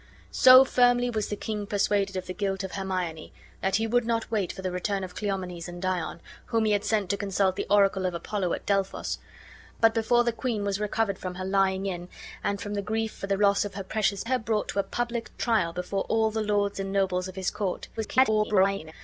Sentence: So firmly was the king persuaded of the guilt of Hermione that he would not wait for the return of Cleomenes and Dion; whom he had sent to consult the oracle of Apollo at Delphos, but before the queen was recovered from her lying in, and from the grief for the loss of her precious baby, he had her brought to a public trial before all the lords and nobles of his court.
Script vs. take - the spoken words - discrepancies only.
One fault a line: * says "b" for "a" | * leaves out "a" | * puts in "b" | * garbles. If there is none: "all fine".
* leaves out "baby he had"
* garbles